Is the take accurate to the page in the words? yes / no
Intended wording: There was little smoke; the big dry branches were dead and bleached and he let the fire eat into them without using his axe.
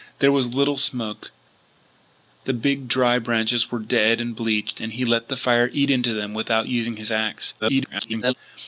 no